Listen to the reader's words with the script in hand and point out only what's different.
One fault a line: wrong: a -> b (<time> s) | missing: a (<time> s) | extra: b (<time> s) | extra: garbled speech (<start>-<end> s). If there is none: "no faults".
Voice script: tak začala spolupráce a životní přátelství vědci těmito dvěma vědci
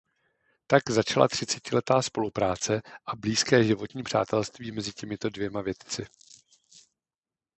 extra: třicetiletá (1.3 s)
extra: blízké (3.1 s)
wrong: vědci -> mezi (4.7 s)